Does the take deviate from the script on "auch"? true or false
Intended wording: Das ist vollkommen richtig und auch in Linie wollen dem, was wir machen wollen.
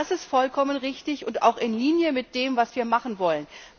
false